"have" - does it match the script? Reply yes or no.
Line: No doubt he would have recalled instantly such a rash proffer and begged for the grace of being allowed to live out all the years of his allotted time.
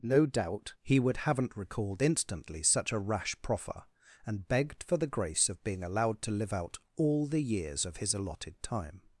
no